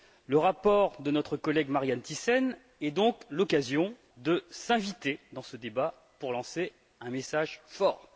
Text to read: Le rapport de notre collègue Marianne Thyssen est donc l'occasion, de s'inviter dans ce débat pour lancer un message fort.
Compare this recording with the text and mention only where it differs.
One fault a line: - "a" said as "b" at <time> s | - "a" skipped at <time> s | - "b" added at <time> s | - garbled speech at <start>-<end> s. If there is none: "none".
none